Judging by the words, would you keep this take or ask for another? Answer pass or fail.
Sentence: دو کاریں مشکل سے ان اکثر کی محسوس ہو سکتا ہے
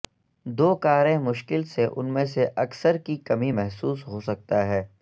fail